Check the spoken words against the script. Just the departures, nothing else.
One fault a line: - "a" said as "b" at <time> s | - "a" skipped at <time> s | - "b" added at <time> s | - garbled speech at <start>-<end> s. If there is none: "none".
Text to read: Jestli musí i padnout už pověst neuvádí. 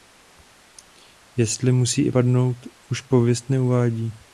none